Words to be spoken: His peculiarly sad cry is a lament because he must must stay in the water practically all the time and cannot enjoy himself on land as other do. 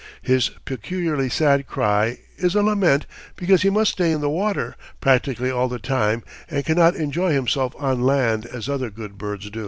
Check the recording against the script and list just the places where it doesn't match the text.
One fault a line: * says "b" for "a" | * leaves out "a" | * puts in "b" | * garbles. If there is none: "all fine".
* leaves out "must"
* puts in "good birds"